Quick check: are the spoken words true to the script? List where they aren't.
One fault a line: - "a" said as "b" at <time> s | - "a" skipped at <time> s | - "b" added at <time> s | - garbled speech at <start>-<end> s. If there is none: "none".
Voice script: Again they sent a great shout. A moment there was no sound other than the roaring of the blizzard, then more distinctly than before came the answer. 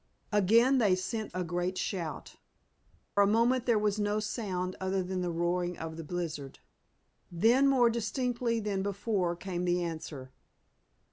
none